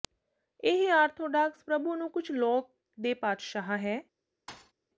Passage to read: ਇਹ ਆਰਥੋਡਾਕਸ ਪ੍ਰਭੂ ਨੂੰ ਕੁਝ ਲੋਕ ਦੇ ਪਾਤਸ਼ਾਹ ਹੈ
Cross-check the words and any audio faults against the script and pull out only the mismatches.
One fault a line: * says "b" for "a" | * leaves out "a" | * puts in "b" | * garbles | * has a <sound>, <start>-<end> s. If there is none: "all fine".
* has a thud, 4.5-4.7 s